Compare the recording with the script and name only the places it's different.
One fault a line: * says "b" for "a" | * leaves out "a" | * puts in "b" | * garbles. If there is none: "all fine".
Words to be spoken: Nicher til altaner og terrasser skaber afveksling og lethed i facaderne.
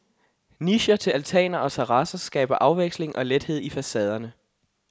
all fine